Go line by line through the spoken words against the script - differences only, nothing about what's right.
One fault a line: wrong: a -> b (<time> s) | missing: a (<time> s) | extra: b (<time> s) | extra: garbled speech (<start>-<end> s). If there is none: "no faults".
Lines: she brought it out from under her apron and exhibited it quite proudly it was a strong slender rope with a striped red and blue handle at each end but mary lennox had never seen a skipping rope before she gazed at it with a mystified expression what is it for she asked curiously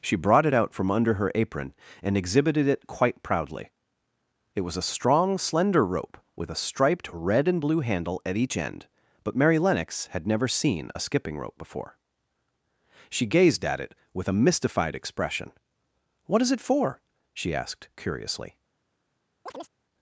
no faults